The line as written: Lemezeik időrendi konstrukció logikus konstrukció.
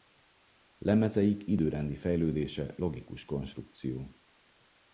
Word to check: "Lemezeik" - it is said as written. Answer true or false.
true